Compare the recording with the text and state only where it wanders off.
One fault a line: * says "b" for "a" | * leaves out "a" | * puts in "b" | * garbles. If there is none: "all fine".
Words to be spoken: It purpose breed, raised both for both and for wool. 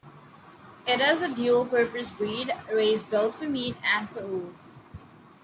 * puts in "is a dual"
* says "meat" for "both"